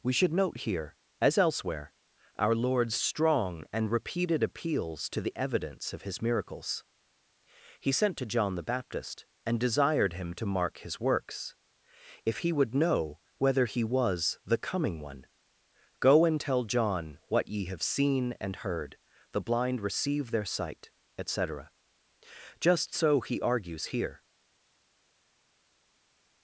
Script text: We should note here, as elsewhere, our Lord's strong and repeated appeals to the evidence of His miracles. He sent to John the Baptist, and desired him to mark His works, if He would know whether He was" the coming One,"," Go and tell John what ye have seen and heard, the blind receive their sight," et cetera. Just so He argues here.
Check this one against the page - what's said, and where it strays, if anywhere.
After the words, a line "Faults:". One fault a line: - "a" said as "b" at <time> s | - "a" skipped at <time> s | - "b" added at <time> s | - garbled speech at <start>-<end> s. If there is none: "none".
We should note here, as elsewhere, our Lord's strong and repeated appeals to the evidence of His miracles. He sent to John the Baptist, and desired him to mark His works, if He would know whether He was" the coming One,"," Go and tell John what ye have seen and heard, the blind receive their sight," et cetera. Just so He argues here.
Faults:
none